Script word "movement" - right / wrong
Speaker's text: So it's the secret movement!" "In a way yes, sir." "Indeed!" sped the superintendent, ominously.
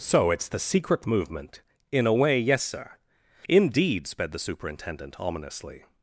right